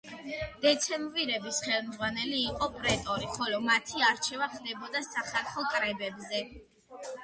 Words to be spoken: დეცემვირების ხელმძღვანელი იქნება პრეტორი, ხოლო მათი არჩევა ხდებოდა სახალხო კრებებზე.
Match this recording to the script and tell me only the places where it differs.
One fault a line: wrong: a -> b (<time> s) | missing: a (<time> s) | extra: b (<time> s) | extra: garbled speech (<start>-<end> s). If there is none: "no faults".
wrong: იქნება -> იყო (2.5 s)